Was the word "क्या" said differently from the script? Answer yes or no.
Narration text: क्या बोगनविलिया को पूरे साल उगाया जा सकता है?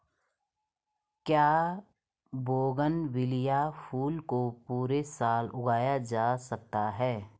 no